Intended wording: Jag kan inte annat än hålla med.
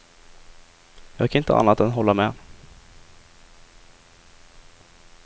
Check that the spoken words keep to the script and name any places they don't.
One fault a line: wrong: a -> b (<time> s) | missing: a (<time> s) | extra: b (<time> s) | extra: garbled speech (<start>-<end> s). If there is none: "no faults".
no faults